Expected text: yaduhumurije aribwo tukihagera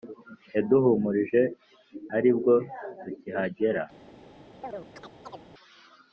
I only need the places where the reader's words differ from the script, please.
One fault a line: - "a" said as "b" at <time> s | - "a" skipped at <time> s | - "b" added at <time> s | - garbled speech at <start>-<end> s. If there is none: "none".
none